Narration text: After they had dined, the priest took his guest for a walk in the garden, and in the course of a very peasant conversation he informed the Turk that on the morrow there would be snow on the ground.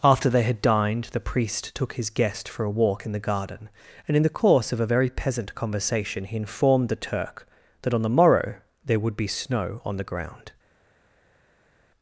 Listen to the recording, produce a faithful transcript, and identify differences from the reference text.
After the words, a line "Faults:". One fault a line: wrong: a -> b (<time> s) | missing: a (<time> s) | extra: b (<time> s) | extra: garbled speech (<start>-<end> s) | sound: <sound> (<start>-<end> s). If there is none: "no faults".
After they had dined, the priest took his guest for a walk in the garden, and in the course of a very peasant conversation he informed the Turk that on the morrow there would be snow on the ground.
Faults:
no faults